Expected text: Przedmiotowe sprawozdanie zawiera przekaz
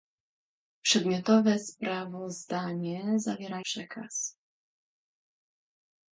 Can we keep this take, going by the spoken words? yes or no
yes